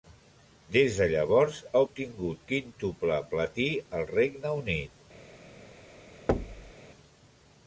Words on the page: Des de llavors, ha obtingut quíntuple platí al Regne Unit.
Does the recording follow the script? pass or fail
pass